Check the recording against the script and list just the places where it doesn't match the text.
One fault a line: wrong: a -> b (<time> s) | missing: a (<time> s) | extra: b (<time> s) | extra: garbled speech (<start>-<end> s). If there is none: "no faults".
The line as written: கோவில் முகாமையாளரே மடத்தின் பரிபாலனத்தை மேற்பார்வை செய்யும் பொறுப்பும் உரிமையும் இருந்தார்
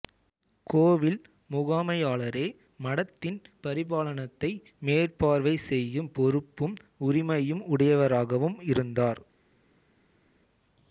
extra: உடையவராகவும் (7.7 s)